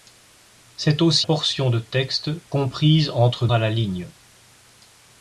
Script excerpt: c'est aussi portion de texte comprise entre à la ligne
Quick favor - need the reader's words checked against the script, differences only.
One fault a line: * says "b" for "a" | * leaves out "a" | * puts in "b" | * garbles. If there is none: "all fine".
all fine